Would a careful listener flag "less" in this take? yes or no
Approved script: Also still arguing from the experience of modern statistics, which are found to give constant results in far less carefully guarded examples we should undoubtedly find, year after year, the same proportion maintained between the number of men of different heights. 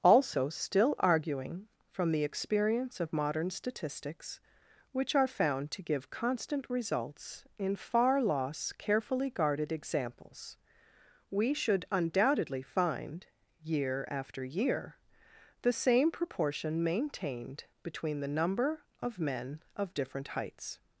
yes